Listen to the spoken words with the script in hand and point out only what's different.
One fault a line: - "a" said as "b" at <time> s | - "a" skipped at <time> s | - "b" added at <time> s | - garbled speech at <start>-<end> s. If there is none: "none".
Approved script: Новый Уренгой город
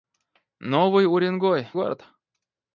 none